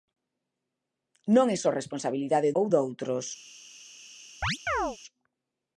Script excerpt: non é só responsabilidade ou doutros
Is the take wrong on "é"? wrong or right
right